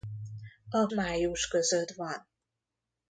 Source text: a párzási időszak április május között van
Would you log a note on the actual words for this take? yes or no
yes